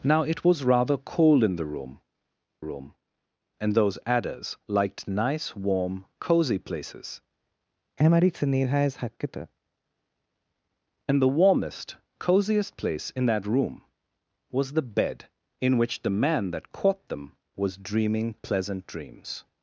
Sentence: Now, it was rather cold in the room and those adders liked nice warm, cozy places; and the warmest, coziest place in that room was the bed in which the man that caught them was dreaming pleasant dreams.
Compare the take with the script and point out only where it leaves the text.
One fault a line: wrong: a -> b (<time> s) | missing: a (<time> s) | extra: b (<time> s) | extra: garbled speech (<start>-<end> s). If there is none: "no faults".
extra: room (2.6 s)